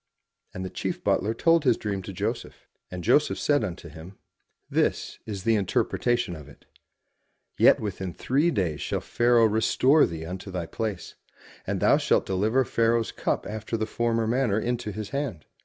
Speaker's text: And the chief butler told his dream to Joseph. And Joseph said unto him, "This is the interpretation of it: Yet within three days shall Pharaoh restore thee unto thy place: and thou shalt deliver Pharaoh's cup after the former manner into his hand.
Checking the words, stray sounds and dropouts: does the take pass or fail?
pass